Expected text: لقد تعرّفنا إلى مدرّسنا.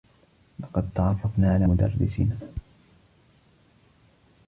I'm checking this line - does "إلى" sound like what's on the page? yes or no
no